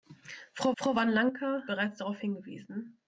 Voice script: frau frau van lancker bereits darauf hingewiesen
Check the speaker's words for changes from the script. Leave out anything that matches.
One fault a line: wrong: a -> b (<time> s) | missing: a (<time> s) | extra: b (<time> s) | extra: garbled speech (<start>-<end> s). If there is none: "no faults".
no faults